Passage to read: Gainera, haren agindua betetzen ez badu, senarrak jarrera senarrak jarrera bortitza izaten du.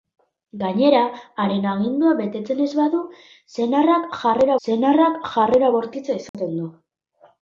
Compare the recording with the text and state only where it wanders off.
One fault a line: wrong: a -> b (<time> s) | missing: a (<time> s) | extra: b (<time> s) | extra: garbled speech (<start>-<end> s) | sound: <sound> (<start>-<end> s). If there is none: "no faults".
sound: dropout (6.3-6.3 s)